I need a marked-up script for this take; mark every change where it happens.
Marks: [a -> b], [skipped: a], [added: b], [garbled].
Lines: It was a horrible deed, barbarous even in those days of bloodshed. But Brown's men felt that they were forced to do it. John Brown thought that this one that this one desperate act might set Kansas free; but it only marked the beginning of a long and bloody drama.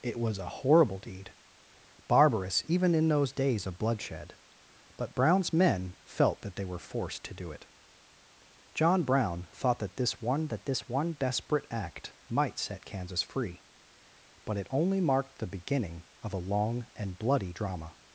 It was a horrible deed, barbarous even in those days of bloodshed. But Brown's men felt that they were forced to do it. John Brown thought that this one that this one desperate act might set Kansas free; but it only marked the beginning of a long and bloody drama.